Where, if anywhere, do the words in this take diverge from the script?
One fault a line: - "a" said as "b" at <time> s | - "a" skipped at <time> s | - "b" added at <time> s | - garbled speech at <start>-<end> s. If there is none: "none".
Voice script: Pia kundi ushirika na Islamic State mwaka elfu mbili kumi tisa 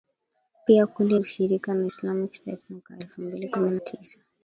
none